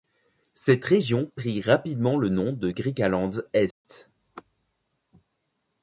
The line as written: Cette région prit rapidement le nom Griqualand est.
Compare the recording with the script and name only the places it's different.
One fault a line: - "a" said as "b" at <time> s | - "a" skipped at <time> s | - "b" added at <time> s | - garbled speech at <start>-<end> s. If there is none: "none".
- "de" added at 2.5 s